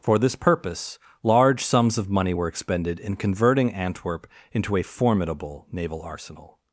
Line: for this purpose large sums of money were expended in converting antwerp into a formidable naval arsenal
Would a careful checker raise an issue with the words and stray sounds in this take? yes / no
no